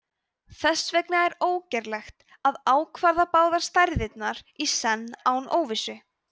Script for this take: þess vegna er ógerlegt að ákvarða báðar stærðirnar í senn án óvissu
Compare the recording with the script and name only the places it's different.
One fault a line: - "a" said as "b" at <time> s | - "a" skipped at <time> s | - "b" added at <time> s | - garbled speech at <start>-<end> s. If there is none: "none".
none